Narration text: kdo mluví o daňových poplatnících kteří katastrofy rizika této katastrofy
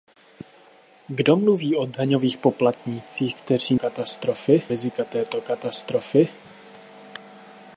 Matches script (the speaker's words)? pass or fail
pass